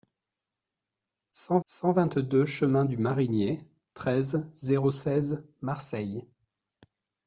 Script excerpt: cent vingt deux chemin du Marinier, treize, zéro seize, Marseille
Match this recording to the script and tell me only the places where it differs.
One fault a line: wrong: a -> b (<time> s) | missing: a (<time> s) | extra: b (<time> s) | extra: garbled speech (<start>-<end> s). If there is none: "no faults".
extra: cent (1.6 s)